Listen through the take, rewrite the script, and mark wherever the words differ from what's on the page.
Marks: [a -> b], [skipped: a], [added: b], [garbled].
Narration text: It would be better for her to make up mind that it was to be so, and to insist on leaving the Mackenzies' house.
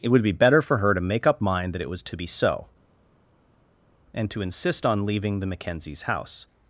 It would be better for her to make up mind that it was to be so, and to insist on leaving the Mackenzies' house.